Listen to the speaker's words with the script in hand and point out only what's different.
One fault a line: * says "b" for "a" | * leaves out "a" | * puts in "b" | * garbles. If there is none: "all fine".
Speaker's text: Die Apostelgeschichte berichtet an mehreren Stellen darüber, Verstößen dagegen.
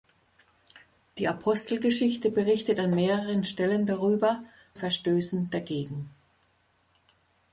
all fine